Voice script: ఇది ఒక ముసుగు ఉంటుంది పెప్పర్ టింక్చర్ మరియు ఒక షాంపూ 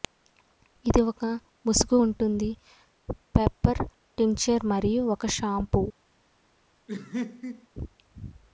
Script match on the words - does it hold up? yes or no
yes